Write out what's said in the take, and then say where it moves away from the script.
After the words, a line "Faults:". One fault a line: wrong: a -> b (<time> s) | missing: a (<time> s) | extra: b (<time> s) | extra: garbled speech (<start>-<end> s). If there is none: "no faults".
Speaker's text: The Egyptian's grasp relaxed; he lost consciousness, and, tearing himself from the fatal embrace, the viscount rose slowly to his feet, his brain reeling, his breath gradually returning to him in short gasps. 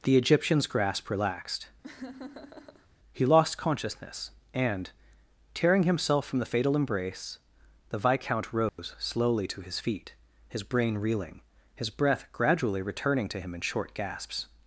The Egyptian's grasp relaxed; he lost consciousness, and, tearing himself from the fatal embrace, the viscount rose slowly to his feet, his brain reeling, his breath gradually returning to him in short gasps.
Faults:
no faults